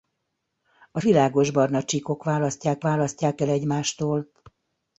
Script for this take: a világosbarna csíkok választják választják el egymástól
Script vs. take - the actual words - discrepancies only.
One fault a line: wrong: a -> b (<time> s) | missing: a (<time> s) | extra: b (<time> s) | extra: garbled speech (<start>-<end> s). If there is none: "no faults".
no faults